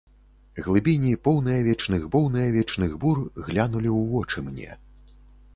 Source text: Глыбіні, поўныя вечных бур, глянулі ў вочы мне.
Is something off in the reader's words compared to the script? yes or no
yes